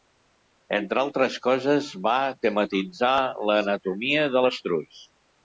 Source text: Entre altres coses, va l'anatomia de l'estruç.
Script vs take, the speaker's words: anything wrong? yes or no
yes